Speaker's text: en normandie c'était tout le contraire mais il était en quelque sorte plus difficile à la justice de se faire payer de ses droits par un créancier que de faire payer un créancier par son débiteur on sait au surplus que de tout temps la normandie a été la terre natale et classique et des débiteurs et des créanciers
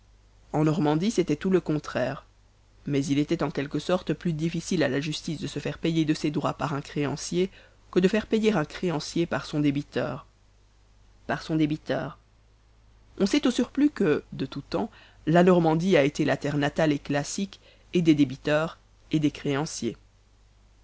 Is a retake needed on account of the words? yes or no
yes